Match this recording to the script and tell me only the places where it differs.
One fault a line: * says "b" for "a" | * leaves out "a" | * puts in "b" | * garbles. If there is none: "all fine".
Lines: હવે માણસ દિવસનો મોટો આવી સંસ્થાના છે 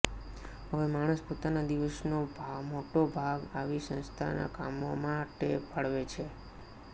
* puts in "પોતાના"
* puts in "ભાગ"
* puts in "કામો માટે ફાળવે"